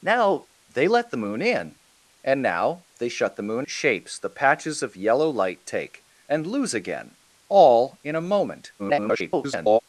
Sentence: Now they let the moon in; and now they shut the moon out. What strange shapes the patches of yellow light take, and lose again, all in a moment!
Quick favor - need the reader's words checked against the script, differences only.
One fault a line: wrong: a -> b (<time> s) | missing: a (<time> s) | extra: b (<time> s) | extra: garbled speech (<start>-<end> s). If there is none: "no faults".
missing: out What strange (3.7 s)
extra: garbled speech (8.8-9.8 s)